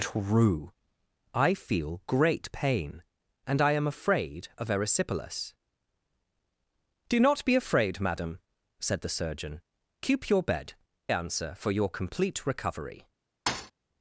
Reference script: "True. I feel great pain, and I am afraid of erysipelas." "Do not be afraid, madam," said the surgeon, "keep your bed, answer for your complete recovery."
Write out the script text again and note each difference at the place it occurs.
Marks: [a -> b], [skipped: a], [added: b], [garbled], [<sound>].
"True. I feel great pain, and I am afraid of erysipelas." "Do not be afraid, madam," said the surgeon, "keep your bed, answer for your complete recovery." [thud]